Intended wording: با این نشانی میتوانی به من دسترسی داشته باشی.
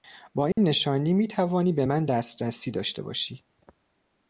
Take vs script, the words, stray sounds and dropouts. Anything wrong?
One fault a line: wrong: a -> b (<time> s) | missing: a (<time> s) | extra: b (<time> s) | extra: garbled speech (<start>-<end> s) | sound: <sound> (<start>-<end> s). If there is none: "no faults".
sound: dropout (0.5-0.6 s)